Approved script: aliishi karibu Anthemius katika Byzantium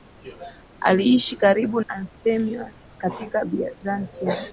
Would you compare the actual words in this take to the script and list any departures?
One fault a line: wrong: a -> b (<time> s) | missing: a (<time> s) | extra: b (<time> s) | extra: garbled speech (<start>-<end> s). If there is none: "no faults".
no faults